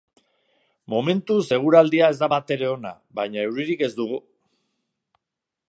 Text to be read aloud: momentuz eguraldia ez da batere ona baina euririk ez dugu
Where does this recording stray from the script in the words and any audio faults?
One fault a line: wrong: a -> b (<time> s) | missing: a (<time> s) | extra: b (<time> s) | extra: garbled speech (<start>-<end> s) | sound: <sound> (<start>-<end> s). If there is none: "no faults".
no faults